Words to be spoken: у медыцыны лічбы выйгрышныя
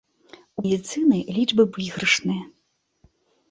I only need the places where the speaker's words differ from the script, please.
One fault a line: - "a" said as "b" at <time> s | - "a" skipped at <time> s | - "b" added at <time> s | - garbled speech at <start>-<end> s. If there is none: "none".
none